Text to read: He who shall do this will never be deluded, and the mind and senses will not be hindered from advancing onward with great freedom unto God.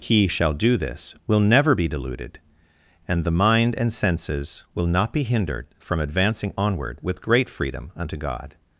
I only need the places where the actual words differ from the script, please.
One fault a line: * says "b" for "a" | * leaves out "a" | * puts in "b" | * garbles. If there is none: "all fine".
* leaves out "who"